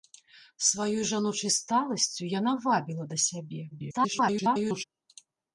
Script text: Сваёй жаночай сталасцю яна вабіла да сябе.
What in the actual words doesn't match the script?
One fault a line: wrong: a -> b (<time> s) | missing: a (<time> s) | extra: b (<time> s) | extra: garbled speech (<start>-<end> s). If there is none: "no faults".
extra: garbled speech (3.7-4.8 s)